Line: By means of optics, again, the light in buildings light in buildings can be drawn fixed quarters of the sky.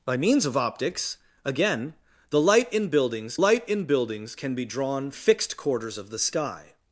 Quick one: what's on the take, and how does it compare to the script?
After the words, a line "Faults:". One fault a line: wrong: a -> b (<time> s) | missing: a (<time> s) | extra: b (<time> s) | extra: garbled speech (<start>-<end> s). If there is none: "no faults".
By means of optics, again, the light in buildings light in buildings can be drawn fixed quarters of the sky.
Faults:
no faults